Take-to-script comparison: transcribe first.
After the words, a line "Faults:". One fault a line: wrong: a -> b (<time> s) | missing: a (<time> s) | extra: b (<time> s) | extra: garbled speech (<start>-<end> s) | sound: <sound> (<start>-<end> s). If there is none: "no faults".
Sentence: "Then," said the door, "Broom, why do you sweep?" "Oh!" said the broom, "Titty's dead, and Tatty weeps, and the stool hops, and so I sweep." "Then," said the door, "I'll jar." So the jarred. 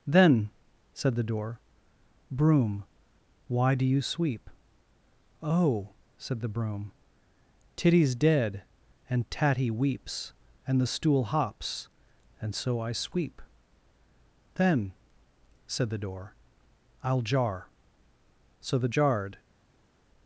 "Then," said the door, "Broom, why do you sweep?" "Oh!" said the broom, "Titty's dead, and Tatty weeps, and the stool hops, and so I sweep." "Then," said the door, "I'll jar." So the jarred.
Faults:
no faults